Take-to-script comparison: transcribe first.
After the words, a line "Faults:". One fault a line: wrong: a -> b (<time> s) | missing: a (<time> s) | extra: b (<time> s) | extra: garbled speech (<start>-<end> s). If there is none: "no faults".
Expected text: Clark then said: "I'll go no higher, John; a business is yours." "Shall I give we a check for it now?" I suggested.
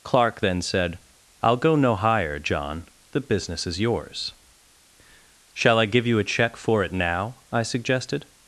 Clark then said: "I'll go no higher, John; the business is yours." "Shall I give you a check for it now?" I suggested.
Faults:
wrong: a -> the (3.1 s)
wrong: we -> you (6.1 s)